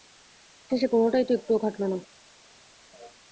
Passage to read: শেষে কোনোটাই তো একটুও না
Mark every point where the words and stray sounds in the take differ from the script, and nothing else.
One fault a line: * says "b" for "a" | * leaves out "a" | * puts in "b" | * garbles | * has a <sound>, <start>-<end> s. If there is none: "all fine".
* puts in "খাটল"